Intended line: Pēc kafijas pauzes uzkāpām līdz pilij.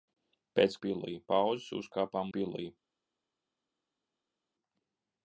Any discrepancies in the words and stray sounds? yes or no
yes